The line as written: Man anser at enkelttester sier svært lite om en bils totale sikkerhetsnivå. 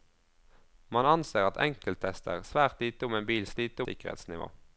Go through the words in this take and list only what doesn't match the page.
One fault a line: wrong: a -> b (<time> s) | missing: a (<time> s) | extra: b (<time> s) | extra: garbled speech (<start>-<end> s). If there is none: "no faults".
missing: sier (2.4 s)
wrong: totale -> lite (3.6 s)